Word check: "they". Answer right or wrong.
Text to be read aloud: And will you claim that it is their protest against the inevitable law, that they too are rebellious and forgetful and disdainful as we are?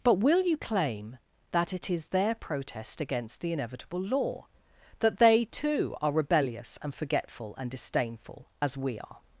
right